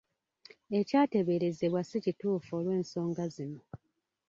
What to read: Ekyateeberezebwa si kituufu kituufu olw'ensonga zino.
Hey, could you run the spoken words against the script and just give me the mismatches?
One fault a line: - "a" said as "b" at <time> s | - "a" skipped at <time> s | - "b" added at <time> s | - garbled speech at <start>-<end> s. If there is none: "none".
- "kituufu" skipped at 2.5 s